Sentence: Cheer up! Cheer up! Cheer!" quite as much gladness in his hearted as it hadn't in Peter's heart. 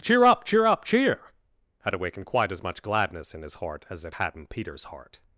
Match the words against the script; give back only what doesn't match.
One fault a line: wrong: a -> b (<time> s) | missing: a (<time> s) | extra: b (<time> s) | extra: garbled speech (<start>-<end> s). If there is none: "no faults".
extra: had awakened (1.8 s)
wrong: hearted -> heart (3.5 s)
wrong: hadn't -> had (4.1 s)